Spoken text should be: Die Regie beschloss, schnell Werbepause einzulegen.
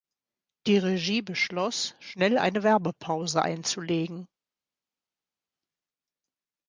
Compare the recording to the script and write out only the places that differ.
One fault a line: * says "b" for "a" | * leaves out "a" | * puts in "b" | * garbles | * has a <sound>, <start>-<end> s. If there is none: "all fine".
* puts in "eine"